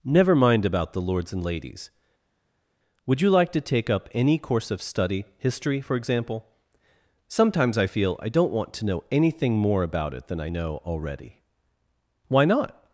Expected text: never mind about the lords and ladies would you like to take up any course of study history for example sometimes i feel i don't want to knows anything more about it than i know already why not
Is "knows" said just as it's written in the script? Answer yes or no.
no